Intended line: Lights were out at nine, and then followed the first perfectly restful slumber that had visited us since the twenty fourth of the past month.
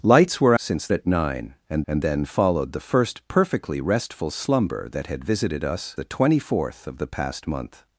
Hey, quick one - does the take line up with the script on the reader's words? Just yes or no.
no